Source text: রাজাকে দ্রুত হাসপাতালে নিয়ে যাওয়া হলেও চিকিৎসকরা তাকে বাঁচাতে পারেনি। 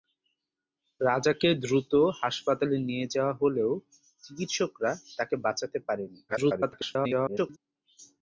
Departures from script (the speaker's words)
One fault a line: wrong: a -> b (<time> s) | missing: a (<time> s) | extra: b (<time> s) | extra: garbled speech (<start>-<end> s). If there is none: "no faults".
extra: garbled speech (6.3-7.6 s)